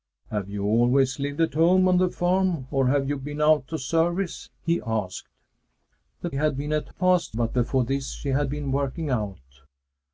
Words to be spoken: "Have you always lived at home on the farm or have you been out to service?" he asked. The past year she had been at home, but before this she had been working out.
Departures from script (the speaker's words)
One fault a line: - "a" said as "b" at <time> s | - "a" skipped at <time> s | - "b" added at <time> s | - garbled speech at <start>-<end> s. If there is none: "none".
- "past year she" skipped at 6.3 s
- "home" said as "past" at 6.9 s